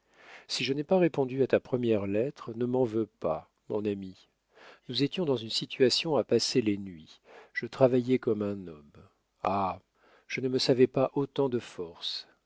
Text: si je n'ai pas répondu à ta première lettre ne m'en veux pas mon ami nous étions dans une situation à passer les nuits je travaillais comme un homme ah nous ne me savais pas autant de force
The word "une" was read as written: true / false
true